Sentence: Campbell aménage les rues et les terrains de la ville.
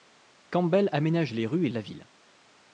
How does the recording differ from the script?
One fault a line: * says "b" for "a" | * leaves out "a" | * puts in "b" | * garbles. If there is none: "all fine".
* leaves out "les terrains"